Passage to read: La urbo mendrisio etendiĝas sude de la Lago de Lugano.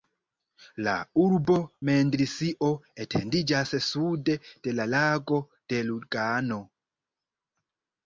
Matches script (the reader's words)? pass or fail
pass